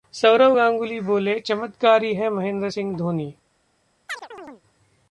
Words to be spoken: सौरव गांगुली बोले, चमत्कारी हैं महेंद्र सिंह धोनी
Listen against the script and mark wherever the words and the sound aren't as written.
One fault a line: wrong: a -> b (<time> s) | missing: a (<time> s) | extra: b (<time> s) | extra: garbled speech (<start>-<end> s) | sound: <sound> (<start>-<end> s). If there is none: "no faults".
sound: chirp (4.1-4.6 s)